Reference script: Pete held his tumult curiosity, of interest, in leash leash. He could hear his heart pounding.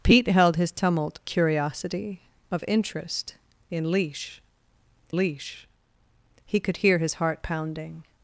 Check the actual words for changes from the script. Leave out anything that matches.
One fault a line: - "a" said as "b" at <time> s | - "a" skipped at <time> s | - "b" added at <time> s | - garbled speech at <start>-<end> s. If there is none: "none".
none